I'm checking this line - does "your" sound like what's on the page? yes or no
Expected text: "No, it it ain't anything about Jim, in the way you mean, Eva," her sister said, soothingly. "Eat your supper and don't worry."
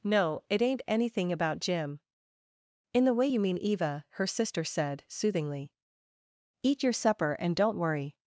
yes